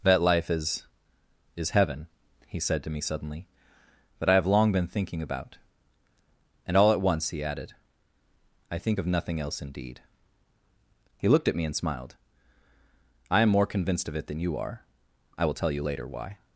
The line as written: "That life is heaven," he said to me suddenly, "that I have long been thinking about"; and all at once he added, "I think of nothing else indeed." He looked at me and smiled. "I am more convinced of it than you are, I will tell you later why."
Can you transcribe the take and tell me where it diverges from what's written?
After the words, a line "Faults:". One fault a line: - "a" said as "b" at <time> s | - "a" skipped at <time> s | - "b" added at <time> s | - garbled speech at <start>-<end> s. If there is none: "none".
"That life is is heaven," he said to me suddenly, "that I have long been thinking about"; and all at once he added, "I think of nothing else indeed." He looked at me and smiled. "I am more convinced of it than you are, I will tell you later why."
Faults:
- "is" added at 1.6 s